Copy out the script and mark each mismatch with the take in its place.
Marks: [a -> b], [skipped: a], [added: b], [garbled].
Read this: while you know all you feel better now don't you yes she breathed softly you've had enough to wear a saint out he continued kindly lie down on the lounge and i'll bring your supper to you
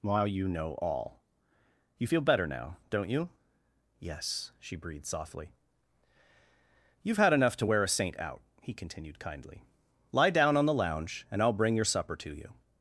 while you know all you feel better now don't you yes she breathed softly you've had enough to wear a saint out he continued kindly lie down on the lounge and i'll bring your supper to you